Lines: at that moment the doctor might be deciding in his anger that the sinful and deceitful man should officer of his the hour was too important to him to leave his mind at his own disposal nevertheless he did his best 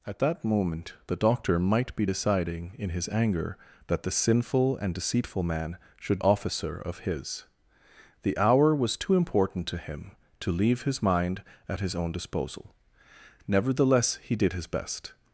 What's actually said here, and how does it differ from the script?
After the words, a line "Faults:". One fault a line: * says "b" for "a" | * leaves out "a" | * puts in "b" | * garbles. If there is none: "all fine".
at that moment the doctor might be deciding in his anger that the sinful and deceitful man should officer of his the hour was too important to him to leave his mind at his own disposal nevertheless he did his best
Faults:
all fine